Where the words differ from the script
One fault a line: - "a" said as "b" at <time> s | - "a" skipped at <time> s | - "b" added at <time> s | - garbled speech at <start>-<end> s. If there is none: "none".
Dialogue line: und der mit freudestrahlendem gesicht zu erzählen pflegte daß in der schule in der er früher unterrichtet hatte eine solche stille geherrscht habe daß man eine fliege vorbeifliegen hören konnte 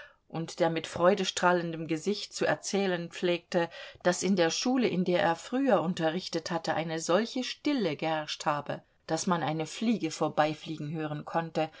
none